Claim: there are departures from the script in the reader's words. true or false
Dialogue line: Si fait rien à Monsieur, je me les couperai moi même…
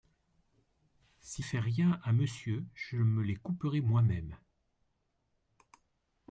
false